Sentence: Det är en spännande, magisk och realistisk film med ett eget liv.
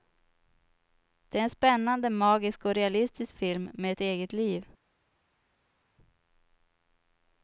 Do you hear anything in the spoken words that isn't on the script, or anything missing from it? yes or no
no